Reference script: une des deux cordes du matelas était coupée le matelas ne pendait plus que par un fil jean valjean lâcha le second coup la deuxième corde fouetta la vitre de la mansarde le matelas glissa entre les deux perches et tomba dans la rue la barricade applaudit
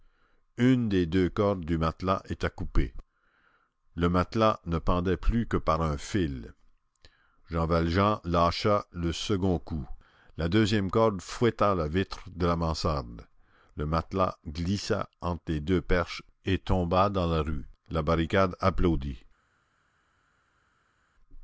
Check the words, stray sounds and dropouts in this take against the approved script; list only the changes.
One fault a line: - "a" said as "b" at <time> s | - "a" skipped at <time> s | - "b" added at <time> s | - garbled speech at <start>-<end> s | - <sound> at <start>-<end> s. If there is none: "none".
none